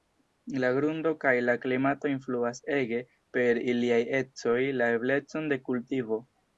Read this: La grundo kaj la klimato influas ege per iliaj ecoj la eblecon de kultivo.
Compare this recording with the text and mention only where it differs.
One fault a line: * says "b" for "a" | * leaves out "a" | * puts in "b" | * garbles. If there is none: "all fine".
all fine